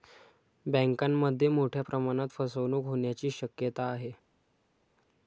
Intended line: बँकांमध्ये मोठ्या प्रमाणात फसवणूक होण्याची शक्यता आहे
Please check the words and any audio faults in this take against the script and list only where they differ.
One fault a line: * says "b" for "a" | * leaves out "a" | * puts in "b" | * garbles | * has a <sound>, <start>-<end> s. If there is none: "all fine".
all fine